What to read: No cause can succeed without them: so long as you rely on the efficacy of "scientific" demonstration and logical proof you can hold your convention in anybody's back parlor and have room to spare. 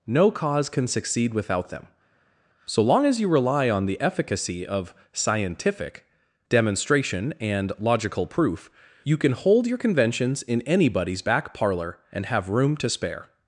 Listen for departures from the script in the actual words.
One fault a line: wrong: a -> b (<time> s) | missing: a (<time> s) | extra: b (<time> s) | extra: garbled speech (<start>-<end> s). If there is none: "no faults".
wrong: convention -> conventions (9.8 s)